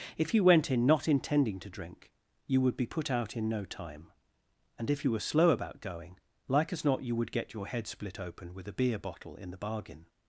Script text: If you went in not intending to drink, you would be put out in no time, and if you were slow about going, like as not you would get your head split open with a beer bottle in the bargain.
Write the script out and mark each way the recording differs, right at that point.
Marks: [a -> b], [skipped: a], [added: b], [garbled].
If you went in not intending to drink, you would be put out in no time, and if you were slow about going, like as not you would get your head split open with a beer bottle in the bargain.